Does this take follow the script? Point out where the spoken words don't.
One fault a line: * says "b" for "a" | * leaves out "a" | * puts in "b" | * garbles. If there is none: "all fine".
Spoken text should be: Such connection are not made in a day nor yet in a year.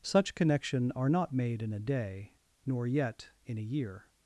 all fine